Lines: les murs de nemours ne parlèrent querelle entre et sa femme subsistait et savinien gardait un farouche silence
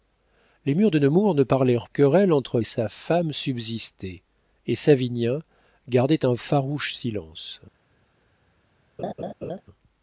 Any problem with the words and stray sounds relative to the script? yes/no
yes